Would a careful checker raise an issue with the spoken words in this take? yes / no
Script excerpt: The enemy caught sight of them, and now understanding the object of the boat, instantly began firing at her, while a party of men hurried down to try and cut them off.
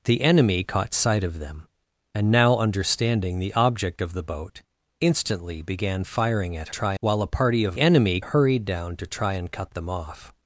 yes